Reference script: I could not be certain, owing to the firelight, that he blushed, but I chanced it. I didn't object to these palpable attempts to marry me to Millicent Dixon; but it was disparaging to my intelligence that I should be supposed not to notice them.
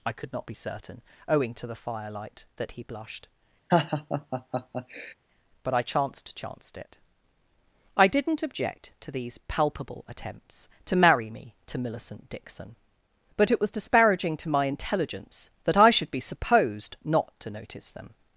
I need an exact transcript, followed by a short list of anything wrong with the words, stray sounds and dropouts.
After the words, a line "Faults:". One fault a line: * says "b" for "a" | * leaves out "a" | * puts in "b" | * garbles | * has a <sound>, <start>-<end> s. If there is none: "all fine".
I could not be certain, owing to the firelight, that he blushed, but I chanced chanced it. I didn't object to these palpable attempts to marry me to Millicent Dixon; but it was disparaging to my intelligence that I should be supposed not to notice them.
Faults:
* has a laugh, 3.7-5.1 s
* puts in "chanced"